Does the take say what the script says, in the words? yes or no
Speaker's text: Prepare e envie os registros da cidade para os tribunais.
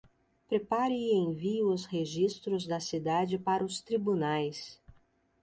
yes